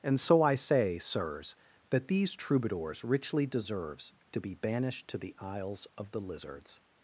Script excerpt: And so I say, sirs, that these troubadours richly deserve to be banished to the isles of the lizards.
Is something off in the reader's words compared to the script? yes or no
yes